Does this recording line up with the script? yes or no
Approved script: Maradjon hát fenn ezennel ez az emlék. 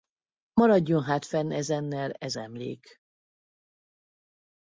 no